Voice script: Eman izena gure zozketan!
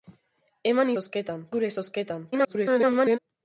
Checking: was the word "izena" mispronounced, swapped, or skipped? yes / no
yes